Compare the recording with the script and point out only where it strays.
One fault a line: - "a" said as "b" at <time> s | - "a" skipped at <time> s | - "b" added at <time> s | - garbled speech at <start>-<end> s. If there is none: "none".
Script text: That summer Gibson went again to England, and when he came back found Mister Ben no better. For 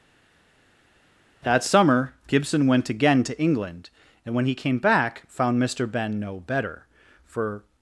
none